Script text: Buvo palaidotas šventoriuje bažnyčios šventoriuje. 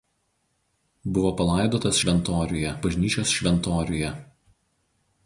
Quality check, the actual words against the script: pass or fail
pass